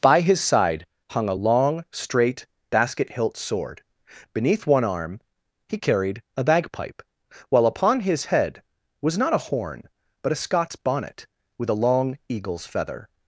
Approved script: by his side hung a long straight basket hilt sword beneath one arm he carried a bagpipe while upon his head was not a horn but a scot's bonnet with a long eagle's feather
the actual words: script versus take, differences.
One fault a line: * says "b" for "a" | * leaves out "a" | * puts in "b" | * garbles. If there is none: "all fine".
all fine